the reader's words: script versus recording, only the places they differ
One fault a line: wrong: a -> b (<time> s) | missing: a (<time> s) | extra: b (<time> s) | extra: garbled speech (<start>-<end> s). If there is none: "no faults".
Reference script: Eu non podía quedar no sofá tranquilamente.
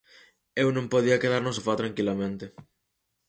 no faults